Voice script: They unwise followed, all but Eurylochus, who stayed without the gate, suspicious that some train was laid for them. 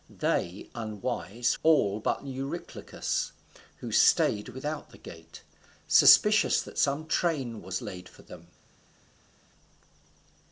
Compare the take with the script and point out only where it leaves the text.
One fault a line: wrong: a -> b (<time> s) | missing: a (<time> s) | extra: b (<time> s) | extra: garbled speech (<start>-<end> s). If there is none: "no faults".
missing: followed (1.5 s)